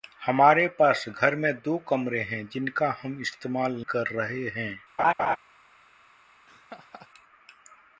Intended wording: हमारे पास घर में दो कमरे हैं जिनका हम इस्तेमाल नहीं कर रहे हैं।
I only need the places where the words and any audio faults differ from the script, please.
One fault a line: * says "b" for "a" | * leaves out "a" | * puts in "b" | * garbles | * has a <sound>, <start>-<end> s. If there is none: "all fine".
* leaves out "नहीं"
* has a laugh, 5.0-5.4 s
* has a laugh, 6.5-7.1 s